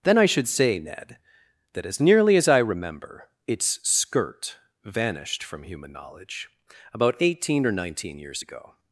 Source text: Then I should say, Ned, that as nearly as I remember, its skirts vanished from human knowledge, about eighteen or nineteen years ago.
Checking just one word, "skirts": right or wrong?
wrong